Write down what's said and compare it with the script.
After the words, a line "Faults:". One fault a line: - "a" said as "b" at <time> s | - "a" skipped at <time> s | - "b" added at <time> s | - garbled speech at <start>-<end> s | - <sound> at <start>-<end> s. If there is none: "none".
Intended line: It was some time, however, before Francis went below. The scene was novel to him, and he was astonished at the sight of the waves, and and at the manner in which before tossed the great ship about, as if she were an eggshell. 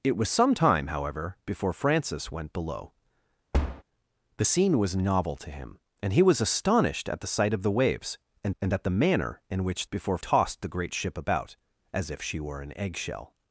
It was some time, however, before Francis went below. The scene was novel to him, and he was astonished at the sight of the waves, and and at the manner in which before tossed the great ship about, as if she were an eggshell.
Faults:
- thud at 3.5-3.8 s